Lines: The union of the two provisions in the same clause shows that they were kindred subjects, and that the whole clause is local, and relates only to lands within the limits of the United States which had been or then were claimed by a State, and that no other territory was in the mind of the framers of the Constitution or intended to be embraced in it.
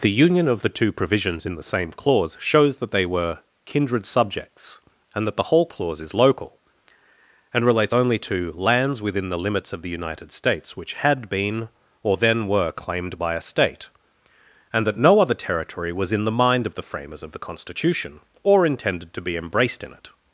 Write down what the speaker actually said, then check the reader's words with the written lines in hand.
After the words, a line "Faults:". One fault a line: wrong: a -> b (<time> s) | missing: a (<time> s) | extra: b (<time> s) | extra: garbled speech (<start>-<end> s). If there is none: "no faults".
The union of the two provisions in the same clause shows that they were kindred subjects, and that the whole clause is local, and relates only to lands within the limits of the United States which had been or then were claimed by a State, and that no other territory was in the mind of the framers of the Constitution or intended to be embraced in it.
Faults:
no faults